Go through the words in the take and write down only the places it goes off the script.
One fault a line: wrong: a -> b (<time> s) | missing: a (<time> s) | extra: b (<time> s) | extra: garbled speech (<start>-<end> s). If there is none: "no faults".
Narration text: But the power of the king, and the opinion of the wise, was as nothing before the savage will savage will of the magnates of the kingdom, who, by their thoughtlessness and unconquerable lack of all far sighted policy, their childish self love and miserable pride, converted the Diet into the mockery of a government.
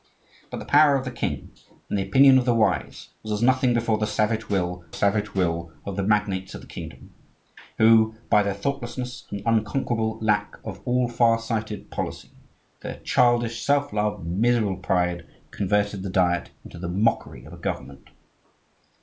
no faults